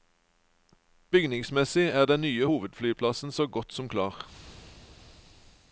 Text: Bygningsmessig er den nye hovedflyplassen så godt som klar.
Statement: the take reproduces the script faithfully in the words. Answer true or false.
true